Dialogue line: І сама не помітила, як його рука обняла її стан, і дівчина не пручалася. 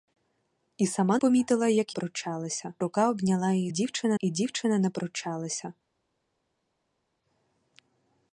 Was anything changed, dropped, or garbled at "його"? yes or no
yes